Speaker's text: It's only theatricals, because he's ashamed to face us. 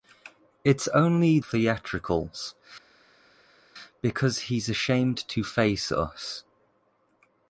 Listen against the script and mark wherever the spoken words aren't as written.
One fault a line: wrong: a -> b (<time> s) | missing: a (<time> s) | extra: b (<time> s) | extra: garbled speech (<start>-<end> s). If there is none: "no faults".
no faults